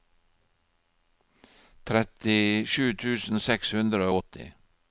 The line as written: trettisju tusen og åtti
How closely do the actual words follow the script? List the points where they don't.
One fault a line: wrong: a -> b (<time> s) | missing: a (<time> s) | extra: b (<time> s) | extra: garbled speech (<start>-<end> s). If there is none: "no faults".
extra: seks hundre (3.5 s)